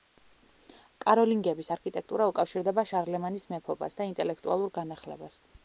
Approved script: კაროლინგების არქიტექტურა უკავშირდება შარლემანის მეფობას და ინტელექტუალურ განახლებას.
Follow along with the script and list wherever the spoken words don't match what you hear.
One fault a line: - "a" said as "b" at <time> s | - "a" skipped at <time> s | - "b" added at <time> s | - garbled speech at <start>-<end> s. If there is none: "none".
none